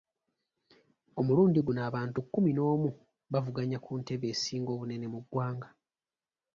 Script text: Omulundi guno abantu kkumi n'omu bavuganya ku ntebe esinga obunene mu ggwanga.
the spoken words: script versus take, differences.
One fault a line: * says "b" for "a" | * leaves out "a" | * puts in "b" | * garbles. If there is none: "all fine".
all fine